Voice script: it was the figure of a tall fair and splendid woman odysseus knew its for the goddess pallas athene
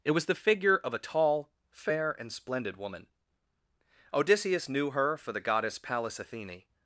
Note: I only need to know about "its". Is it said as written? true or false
false